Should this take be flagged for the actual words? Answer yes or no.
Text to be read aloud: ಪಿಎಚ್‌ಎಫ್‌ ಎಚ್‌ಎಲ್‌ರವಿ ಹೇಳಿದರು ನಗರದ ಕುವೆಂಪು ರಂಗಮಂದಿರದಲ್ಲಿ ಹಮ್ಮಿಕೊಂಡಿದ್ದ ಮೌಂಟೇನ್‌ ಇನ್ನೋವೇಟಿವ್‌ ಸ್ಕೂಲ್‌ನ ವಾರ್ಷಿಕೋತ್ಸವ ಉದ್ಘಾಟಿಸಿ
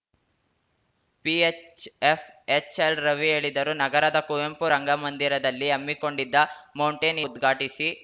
yes